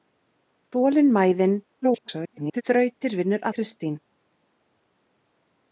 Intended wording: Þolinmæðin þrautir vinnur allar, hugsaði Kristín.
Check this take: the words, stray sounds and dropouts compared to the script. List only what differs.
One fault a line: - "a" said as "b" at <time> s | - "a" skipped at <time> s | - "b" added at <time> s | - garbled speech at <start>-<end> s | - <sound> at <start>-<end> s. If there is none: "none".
- garbled speech at 1.8-2.6 s
- "allar hugsaði" skipped at 3.5 s